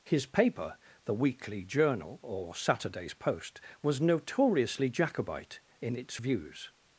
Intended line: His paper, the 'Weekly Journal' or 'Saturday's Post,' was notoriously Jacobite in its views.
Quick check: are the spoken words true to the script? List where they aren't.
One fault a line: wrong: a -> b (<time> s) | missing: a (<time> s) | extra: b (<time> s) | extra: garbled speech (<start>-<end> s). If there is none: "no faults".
no faults